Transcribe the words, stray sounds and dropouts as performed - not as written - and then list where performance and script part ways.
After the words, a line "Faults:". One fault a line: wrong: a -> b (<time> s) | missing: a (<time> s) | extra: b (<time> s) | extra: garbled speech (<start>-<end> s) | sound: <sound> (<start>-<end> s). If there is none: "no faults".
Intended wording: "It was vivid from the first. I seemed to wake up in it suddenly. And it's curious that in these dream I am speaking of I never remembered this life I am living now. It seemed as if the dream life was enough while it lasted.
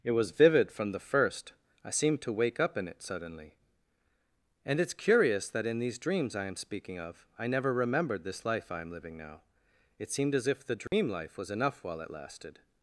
"It was vivid from the first. I seemed to wake up in it suddenly. And it's curious that in these dreams I am speaking of I never remembered this life I am living now. It seemed as if the dream life was enough while it lasted.
Faults:
wrong: dream -> dreams (6.0 s)
sound: dropout (10.9-10.9 s)